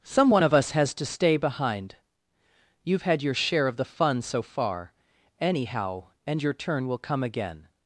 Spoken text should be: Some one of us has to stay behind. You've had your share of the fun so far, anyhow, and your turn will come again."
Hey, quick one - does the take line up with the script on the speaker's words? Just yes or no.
yes